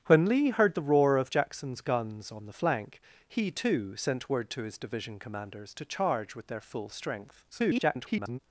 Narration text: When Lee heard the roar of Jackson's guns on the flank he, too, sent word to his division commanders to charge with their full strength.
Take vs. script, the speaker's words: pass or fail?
fail